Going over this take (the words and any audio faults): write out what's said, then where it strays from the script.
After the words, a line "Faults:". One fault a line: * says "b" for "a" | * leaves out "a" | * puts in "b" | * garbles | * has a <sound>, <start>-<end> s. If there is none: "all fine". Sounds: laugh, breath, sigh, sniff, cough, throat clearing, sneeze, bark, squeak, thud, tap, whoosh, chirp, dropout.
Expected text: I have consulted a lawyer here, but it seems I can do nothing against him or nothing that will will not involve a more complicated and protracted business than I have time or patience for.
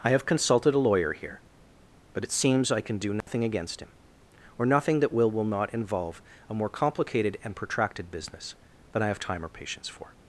I have consulted a lawyer here, but it seems I can do nothing against him or nothing that will will not involve a more complicated and protracted business than I have time or patience for.
Faults:
* has a dropout, 3.2-3.3 s